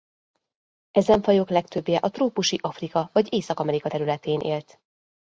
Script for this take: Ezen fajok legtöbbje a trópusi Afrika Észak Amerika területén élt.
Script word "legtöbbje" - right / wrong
right